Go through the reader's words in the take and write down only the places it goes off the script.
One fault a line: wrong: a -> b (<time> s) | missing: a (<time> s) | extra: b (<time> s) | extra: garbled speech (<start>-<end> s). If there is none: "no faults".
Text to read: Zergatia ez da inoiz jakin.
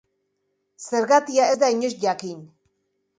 no faults